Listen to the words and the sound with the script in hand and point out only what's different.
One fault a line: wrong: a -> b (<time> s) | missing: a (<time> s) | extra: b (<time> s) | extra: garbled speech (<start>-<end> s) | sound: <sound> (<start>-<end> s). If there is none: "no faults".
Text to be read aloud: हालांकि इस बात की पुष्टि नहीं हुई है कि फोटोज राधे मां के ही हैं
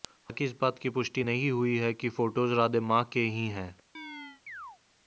sound: chirp (3.9-4.8 s)